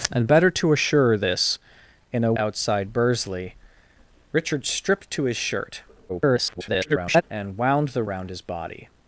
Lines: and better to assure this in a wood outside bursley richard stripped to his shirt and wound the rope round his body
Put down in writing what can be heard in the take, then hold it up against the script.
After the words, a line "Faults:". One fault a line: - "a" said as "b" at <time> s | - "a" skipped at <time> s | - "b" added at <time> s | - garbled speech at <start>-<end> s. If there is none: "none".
and better to assure this in a outside bursley richard stripped to his shirt [garbled] and wound the round his body
Faults:
- "wood" skipped at 2.3 s
- garbled speech at 6.1-7.2 s
- "rope" skipped at 8.0 s